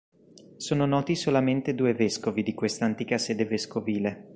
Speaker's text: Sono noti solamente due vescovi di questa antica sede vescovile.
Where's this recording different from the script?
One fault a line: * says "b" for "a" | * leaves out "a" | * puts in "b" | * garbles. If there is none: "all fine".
all fine